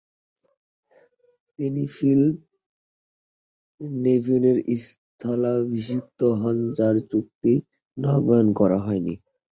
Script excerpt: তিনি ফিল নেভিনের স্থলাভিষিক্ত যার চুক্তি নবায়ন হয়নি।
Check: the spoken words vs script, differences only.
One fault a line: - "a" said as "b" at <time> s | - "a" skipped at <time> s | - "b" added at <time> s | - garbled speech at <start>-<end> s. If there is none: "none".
- "হন" added at 6.4 s
- "করা" added at 8.6 s